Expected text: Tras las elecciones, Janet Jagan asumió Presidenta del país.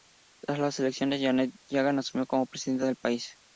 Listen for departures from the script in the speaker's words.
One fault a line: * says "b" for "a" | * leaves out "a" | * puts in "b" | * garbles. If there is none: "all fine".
* puts in "como"